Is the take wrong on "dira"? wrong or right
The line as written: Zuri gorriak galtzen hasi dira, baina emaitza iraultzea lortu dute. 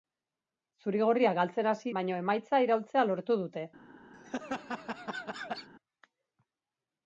wrong